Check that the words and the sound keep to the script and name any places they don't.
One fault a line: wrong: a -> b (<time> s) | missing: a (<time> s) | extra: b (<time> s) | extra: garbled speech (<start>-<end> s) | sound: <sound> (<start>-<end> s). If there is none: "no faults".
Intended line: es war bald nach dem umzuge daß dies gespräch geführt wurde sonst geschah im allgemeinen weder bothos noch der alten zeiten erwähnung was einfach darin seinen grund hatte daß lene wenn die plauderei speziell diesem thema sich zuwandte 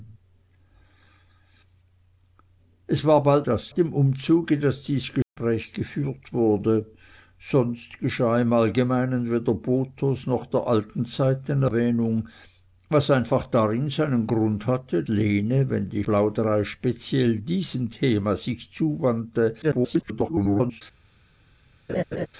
wrong: nach -> daß (3.4 s)
sound: dropout (5.2-5.4 s)
missing: daß (15.0 s)
extra: garbled speech (19.6-20.8 s)
sound: laugh (21.9-22.3 s)